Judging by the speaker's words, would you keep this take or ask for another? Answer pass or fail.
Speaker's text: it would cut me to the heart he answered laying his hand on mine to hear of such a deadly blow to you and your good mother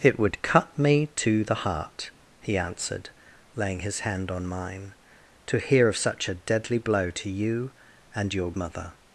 fail